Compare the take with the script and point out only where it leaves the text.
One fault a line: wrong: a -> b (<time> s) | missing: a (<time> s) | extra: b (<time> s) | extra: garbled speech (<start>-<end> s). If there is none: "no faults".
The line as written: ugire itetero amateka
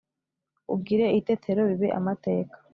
extra: bibe (1.7 s)